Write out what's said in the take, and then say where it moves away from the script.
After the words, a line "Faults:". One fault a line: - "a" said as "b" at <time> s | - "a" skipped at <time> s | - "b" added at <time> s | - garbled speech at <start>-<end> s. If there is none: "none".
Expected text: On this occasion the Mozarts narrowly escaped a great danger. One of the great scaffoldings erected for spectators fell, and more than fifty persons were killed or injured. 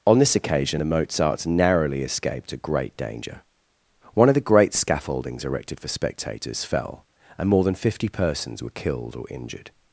On this occasion the Mozarts narrowly escaped a great danger. One of the great scaffoldings erected for spectators fell, and more than fifty persons were killed or injured.
Faults:
none